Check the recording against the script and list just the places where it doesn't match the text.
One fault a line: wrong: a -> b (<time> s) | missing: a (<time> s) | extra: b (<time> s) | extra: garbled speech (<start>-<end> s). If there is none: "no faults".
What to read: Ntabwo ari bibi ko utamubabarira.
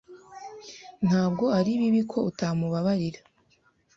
no faults